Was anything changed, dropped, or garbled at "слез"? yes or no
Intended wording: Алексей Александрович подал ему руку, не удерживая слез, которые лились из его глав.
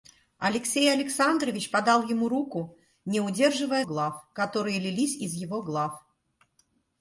yes